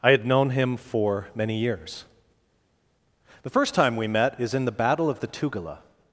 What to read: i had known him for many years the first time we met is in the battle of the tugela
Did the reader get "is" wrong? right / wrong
right